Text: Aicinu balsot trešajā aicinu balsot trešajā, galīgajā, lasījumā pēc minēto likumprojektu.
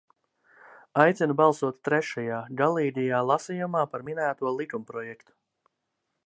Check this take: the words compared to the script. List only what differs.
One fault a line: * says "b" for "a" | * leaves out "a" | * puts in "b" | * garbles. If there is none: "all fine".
* leaves out "aicinu balsot trešajā"
* says "par" for "pēc"